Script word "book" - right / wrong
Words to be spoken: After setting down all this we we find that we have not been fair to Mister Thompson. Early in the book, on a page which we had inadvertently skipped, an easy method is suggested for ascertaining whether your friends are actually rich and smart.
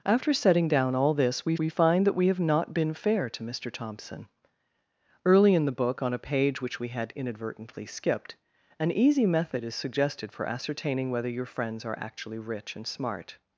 right